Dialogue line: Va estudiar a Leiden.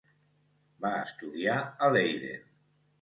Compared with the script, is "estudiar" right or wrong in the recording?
right